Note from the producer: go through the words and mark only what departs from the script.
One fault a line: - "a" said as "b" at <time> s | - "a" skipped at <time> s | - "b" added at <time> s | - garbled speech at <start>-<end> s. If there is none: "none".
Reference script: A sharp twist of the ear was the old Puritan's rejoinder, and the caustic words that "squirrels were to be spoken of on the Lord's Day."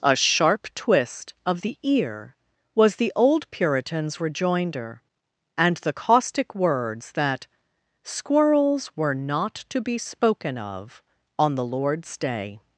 - "not" added at 9.1 s